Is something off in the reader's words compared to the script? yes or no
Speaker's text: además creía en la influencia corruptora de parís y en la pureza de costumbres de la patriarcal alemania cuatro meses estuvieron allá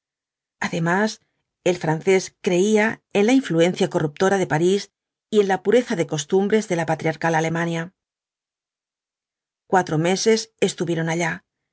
yes